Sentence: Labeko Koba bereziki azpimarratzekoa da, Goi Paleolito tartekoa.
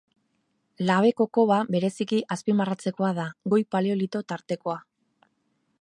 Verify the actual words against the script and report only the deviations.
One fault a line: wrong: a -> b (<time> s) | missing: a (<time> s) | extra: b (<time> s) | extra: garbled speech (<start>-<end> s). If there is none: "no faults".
no faults